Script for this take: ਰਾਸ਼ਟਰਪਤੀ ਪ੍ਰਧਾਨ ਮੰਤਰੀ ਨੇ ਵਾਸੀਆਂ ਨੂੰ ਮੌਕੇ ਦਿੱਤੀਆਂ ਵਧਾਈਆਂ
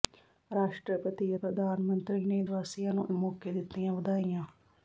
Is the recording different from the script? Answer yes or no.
no